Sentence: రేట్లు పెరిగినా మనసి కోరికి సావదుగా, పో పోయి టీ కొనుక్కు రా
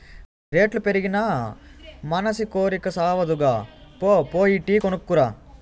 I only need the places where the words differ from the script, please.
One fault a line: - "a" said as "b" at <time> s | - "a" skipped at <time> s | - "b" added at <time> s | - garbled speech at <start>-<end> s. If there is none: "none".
none